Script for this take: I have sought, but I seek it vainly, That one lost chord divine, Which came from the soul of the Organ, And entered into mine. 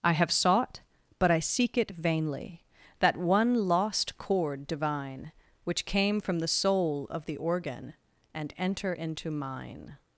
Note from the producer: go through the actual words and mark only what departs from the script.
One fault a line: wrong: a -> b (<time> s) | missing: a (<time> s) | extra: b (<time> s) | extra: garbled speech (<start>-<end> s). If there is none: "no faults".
wrong: entered -> enter (8.6 s)